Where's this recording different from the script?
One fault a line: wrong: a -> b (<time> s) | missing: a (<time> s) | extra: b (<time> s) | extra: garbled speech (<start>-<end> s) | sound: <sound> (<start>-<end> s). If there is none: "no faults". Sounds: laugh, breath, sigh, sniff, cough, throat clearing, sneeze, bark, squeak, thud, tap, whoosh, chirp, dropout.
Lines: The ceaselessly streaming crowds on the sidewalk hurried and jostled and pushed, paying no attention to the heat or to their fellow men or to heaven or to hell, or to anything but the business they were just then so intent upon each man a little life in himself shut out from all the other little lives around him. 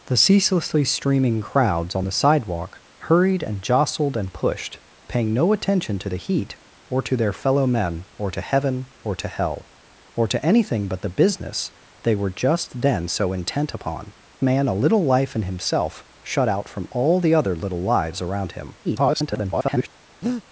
missing: each (14.1 s)
extra: garbled speech (18.8-19.9 s)
sound: breath (20.2-20.4 s)